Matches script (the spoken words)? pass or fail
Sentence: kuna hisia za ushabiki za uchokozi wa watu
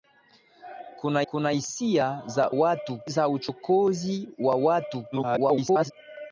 fail